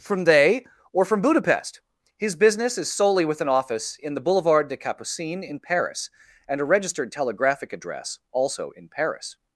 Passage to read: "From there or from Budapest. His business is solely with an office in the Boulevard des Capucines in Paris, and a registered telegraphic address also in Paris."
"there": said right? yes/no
no